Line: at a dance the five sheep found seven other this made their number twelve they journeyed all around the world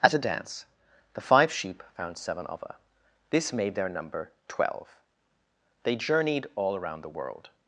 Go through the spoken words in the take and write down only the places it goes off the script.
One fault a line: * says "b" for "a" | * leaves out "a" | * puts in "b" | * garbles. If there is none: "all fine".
all fine